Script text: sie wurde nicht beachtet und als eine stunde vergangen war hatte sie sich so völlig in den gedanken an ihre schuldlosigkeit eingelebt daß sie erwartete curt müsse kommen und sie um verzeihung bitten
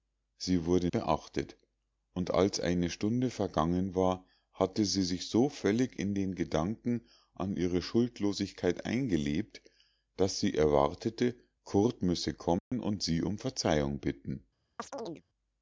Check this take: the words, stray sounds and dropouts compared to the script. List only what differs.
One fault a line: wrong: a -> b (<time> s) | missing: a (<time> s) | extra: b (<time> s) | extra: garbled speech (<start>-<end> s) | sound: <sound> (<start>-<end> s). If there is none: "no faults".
missing: nicht (0.9 s)
sound: dropout (12.6-12.7 s)
sound: chirp (14.8-15.2 s)